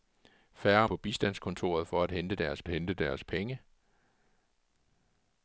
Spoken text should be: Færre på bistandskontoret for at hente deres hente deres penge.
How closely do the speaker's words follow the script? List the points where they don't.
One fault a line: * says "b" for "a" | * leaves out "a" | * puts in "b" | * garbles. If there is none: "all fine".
all fine